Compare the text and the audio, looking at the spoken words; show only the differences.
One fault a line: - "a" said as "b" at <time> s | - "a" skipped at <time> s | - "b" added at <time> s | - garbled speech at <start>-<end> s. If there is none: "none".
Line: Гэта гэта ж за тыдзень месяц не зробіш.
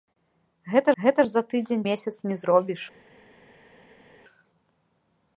none